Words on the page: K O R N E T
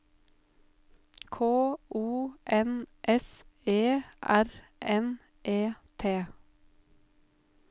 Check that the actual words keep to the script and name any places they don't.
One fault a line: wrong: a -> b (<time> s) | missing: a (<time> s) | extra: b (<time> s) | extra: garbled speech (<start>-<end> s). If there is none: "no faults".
extra: N S E (2.5 s)